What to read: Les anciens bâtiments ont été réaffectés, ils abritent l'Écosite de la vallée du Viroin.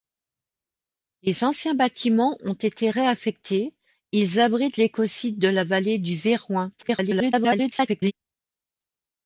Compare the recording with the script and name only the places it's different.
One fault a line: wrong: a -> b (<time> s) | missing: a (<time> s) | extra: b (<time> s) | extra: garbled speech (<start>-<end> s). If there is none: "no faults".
extra: garbled speech (6.8-8.1 s)